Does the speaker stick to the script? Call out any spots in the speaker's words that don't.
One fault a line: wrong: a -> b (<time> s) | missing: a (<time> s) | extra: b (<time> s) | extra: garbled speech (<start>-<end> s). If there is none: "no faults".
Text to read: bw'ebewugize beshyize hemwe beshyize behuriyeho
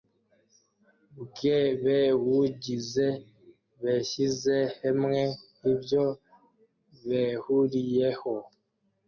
wrong: beshyize -> ibyo (5.7 s)